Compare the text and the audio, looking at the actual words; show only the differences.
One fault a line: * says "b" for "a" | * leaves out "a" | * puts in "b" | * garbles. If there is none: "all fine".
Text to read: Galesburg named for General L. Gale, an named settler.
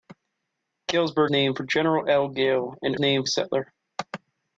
all fine